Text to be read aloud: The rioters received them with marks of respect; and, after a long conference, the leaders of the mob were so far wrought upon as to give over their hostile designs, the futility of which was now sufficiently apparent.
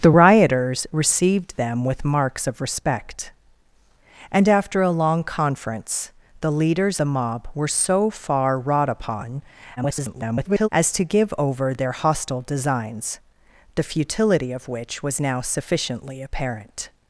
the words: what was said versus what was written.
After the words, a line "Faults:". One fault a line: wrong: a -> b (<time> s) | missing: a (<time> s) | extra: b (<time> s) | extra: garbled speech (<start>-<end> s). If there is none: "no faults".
The rioters received them with marks of respect; and, after a long conference, the leaders the mob were so far wrought upon [garbled] as to give over their hostile designs, the futility of which was now sufficiently apparent.
Faults:
missing: of (7.0 s)
extra: garbled speech (9.8-10.7 s)